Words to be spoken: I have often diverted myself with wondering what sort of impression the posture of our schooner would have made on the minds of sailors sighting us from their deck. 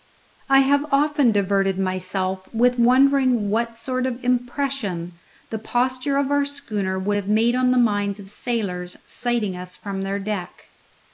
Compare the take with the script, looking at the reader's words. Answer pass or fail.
pass